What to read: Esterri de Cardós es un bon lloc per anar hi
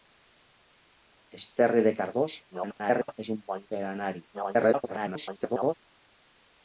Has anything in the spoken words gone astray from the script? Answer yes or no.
yes